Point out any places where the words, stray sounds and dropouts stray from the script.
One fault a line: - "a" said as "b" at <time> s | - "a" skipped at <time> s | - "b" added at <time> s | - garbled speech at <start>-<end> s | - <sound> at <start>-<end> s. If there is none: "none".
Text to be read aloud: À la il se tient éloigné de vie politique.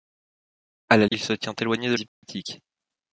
- dropout at 2.1-2.2 s